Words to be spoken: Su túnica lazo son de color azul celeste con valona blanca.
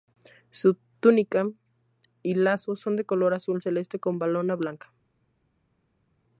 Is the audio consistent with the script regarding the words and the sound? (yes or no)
no